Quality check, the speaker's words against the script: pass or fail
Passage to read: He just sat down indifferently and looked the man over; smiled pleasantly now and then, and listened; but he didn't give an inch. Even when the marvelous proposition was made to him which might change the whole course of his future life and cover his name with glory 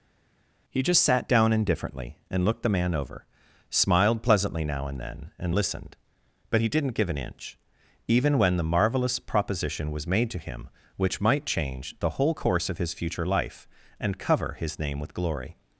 pass